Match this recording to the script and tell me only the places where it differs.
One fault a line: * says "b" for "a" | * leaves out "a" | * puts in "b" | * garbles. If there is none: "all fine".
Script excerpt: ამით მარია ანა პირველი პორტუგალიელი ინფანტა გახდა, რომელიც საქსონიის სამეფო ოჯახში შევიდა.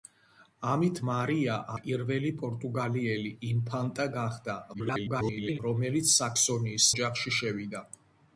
* leaves out "ანა"
* garbles
* leaves out "სამეფო"